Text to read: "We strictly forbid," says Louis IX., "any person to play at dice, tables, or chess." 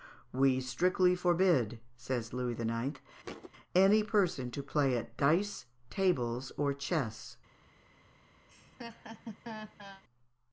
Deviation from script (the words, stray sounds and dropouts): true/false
true